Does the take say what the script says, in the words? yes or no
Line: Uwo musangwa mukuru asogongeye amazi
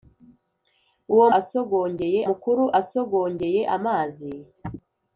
no